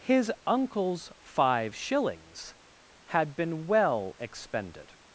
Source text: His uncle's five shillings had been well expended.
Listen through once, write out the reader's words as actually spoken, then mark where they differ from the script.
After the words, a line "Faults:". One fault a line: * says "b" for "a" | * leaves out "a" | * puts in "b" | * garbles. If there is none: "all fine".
His uncle's five shillings had been well expended.
Faults:
all fine